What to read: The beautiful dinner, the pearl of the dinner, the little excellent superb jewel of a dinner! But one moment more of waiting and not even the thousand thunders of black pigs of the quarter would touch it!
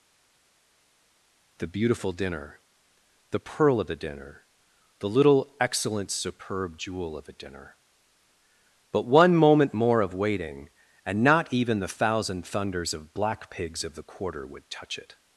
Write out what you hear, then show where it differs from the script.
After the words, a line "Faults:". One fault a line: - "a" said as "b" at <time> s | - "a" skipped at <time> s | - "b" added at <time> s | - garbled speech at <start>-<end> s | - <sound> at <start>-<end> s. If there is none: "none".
The beautiful dinner, the pearl of the dinner, the little excellent superb jewel of a dinner! But one moment more of waiting and not even the thousand thunders of black pigs of the quarter would touch it!
Faults:
none